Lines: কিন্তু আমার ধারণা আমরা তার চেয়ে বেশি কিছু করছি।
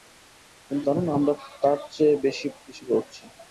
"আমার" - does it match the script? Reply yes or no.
no